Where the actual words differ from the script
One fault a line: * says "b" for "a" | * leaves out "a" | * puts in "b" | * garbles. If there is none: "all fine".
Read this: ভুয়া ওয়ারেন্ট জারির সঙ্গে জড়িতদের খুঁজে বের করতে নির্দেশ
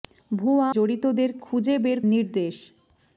* leaves out "ওয়ারেন্ট জারির সঙ্গে"
* leaves out "করতে"